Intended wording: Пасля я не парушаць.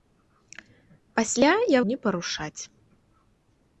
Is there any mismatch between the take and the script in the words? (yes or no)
no